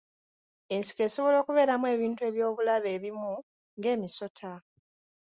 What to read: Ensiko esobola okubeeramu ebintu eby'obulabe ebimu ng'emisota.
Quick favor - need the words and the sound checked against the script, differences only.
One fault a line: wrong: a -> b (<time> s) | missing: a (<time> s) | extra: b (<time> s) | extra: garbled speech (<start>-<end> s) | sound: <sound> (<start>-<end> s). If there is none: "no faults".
no faults